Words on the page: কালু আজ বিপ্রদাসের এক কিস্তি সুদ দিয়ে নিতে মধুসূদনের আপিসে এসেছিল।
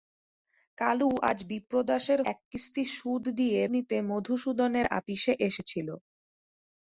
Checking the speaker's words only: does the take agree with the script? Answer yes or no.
yes